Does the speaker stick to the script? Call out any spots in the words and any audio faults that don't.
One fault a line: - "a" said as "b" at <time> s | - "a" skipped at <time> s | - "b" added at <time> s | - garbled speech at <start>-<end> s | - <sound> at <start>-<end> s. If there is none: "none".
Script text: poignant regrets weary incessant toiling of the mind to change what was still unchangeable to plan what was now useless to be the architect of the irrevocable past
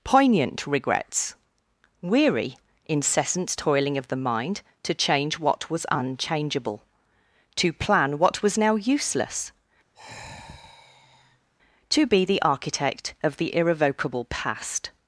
- "still" skipped at 5.9 s
- sigh at 9.9-11.5 s